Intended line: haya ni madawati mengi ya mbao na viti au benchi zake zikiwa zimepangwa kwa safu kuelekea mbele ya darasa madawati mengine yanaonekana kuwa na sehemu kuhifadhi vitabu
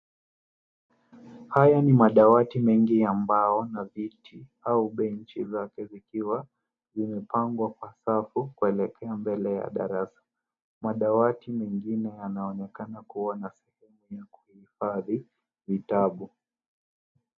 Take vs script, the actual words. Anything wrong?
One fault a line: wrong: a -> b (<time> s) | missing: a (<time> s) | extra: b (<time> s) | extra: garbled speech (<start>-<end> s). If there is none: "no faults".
extra: ya (14.1 s)